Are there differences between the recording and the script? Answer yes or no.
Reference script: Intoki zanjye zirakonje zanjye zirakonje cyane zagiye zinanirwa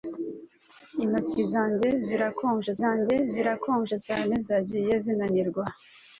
no